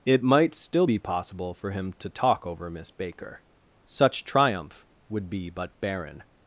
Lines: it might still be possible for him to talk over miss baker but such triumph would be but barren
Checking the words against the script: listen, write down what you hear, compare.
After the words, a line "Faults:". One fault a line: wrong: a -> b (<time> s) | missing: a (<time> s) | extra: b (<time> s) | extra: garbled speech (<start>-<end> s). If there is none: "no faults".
it might still be possible for him to talk over miss baker such triumph would be but barren
Faults:
missing: but (3.4 s)